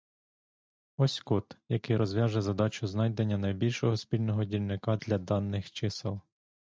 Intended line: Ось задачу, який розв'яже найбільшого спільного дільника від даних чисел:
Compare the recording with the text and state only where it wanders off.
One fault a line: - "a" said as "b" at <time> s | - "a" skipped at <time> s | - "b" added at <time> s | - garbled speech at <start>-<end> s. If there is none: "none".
- "задачу" said as "код" at 1.2 s
- "задачу знайдення" added at 2.4 s
- "від" said as "для" at 4.9 s